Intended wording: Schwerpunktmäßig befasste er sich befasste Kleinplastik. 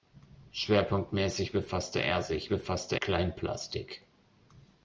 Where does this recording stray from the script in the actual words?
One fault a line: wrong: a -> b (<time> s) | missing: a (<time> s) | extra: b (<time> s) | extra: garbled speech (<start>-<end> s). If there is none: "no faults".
no faults